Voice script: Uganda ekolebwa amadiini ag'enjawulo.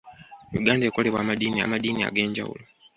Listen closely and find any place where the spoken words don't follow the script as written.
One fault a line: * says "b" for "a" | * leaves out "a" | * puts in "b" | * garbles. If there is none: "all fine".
* puts in "amadiini"